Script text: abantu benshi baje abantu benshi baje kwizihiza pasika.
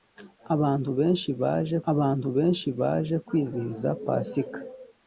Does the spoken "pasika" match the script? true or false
true